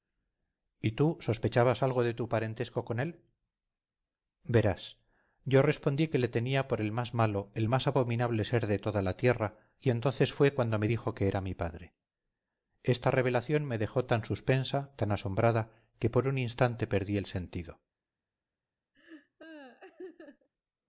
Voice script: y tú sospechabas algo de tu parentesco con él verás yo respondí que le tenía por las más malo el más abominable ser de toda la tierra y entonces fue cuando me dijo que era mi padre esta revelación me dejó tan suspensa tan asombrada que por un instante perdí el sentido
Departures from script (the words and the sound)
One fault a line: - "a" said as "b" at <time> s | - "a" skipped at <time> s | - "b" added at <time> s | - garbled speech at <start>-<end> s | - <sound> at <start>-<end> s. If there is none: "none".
- "las" said as "el" at 6.8 s
- laugh at 18.9-20.5 s